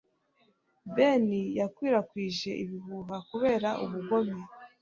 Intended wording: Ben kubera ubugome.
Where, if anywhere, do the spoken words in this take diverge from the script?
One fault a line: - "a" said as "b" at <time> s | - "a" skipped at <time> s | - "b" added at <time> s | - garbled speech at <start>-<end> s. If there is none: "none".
- "yakwirakwije ibihuha" added at 1.6 s